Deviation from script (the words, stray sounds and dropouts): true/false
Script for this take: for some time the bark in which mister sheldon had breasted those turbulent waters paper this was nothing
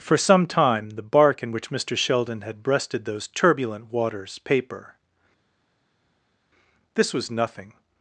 false